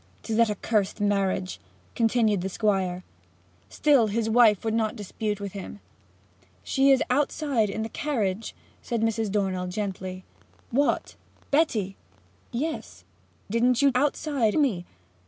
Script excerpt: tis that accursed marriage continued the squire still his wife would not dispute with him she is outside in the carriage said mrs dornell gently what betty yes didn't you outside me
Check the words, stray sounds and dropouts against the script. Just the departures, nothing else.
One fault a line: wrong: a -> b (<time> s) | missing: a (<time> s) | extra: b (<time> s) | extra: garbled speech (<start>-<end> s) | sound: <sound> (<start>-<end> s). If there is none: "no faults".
no faults